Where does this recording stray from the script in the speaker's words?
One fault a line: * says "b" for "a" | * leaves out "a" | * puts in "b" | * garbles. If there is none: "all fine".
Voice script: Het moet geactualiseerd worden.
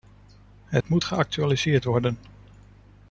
all fine